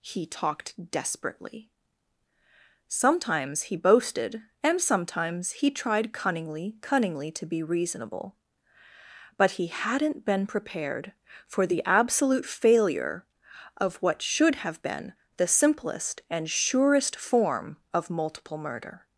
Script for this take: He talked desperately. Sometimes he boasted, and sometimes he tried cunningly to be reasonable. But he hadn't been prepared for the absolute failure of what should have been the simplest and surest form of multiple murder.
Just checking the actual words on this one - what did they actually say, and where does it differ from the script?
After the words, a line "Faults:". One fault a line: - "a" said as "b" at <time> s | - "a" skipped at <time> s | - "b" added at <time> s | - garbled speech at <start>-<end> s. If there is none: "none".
He talked desperately. Sometimes he boasted, and sometimes he tried cunningly cunningly to be reasonable. But he hadn't been prepared for the absolute failure of what should have been the simplest and surest form of multiple murder.
Faults:
- "cunningly" added at 6.8 s